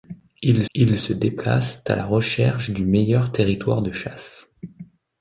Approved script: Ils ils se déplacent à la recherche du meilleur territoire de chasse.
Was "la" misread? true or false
false